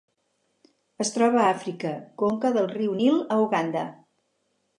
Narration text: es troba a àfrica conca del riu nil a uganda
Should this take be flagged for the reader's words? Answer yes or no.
no